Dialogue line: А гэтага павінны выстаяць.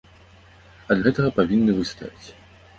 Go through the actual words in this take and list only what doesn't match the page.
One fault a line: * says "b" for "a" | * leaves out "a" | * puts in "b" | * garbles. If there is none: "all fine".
all fine